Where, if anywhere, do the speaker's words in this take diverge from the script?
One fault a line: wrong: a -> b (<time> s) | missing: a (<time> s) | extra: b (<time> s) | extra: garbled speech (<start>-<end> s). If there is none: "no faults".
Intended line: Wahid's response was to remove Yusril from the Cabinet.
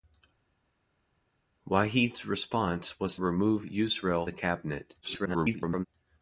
missing: to (3.2 s)
missing: from (4.3 s)
extra: garbled speech (5.0-5.9 s)